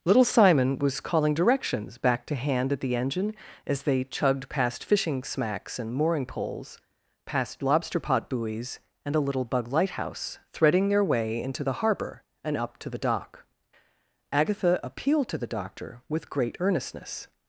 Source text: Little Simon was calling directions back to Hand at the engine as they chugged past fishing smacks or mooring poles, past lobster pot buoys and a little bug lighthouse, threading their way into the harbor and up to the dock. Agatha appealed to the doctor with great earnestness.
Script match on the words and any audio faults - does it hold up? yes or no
no